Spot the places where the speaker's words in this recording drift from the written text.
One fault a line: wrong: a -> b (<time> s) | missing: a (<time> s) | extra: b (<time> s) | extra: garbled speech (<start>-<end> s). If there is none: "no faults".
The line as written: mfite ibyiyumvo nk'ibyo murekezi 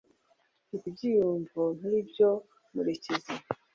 no faults